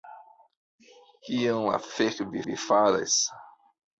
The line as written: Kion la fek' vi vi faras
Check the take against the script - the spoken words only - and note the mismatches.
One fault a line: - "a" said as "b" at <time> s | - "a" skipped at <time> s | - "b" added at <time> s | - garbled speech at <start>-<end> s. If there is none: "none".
none